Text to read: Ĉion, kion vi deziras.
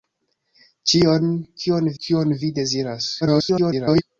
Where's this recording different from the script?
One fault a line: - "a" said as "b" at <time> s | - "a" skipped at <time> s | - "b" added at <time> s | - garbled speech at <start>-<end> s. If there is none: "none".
- "kion" added at 2.0 s
- garbled speech at 3.2-4.0 s